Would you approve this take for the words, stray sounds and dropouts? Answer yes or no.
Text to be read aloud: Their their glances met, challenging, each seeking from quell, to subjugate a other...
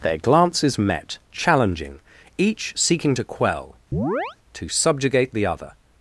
no